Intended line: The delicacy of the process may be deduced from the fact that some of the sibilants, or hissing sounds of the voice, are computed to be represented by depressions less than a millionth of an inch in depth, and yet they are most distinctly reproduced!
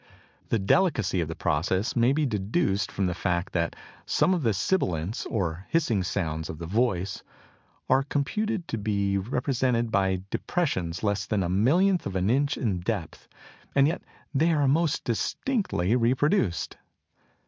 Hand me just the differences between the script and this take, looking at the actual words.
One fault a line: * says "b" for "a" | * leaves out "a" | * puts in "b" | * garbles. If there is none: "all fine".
all fine